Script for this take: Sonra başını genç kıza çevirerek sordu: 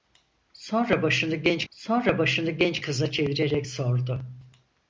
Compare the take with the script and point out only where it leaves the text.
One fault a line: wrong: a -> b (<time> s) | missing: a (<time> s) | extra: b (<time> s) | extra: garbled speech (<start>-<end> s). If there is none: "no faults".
extra: sonra başını genç (1.7 s)